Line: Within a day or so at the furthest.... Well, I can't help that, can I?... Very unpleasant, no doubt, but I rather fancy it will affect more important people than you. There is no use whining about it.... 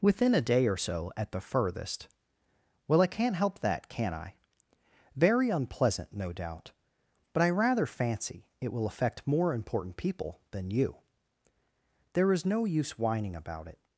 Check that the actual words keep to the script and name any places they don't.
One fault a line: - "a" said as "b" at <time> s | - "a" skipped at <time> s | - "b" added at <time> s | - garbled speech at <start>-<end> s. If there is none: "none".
none